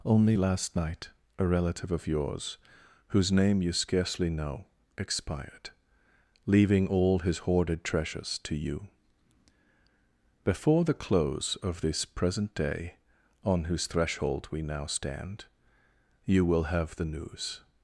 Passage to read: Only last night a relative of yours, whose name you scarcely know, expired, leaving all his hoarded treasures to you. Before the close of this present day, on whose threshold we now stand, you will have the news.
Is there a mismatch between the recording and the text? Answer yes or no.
no